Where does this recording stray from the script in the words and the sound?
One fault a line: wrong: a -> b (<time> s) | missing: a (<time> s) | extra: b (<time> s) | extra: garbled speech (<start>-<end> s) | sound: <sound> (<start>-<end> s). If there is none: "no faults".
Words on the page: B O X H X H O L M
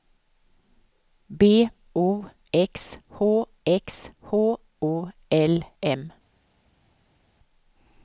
no faults